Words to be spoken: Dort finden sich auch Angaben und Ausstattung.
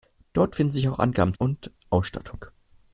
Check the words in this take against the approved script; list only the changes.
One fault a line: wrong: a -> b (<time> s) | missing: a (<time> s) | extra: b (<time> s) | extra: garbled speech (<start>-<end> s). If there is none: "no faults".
no faults